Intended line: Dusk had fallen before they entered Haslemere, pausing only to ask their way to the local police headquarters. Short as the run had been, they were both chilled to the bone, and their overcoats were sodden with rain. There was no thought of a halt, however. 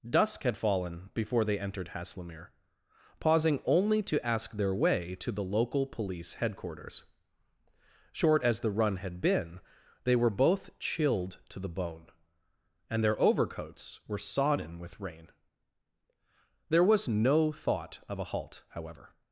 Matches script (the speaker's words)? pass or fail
pass